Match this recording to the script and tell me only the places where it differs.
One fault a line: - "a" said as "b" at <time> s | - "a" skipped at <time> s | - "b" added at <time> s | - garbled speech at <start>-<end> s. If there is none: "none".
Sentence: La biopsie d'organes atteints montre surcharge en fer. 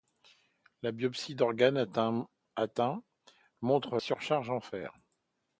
none